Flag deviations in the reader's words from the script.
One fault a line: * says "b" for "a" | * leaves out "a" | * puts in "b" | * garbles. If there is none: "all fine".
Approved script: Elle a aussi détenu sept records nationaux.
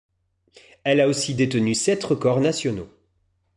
all fine